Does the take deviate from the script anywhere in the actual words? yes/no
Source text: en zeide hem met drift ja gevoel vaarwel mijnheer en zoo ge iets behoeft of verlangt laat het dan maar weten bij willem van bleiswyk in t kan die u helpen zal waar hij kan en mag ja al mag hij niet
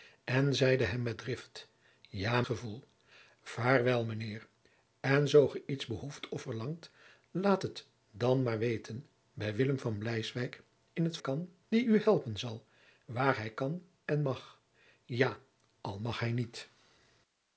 no